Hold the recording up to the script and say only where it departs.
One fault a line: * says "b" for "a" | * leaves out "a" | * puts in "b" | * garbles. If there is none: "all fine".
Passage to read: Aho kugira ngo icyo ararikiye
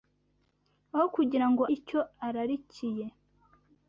all fine